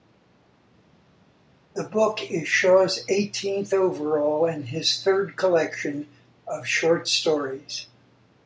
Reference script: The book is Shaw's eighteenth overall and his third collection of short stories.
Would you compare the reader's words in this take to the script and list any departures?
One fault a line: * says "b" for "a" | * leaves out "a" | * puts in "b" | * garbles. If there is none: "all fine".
all fine